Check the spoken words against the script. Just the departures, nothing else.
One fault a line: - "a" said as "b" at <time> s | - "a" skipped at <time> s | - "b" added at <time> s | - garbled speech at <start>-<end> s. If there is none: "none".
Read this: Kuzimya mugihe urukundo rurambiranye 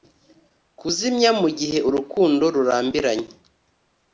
none